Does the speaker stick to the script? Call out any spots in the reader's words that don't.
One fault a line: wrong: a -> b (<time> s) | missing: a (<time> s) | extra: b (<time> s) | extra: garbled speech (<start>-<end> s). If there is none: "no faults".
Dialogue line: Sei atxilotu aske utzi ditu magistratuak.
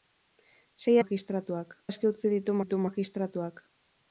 wrong: atxilotu -> magistratuak (1.0 s)
extra: ditu (2.6 s)